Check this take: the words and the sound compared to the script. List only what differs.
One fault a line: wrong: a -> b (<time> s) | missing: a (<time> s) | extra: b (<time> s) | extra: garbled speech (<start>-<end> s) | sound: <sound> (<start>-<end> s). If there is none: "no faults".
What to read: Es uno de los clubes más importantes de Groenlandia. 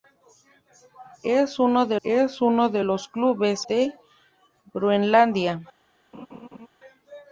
extra: es uno de (2.0 s)
missing: más importantes (3.7 s)
sound: laugh (6.1-6.7 s)